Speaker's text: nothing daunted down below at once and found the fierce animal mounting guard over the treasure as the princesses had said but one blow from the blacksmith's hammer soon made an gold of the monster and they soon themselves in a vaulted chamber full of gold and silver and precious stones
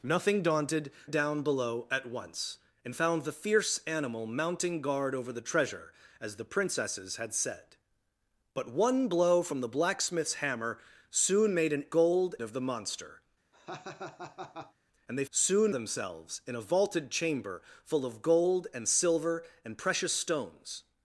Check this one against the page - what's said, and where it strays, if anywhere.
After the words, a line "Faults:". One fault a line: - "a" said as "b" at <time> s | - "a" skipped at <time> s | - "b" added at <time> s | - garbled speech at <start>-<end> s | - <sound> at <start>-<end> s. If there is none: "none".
nothing daunted down below at once and found the fierce animal mounting guard over the treasure as the princesses had said but one blow from the blacksmith's hammer soon made an gold of the monster and they soon themselves in a vaulted chamber full of gold and silver and precious stones
Faults:
- laugh at 13.5-14.7 s